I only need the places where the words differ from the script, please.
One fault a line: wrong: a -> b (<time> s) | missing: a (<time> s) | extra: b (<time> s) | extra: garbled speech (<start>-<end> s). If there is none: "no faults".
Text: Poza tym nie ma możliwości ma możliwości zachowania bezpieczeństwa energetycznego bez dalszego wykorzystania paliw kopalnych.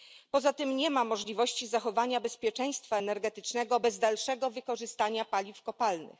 missing: ma możliwości (1.7 s)